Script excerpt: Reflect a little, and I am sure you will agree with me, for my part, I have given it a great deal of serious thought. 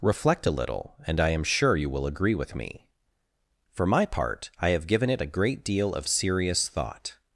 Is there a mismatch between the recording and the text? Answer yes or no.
no